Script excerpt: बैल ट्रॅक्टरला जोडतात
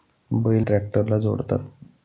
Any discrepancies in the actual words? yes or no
no